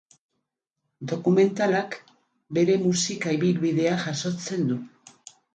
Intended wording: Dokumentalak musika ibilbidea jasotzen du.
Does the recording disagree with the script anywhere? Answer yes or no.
yes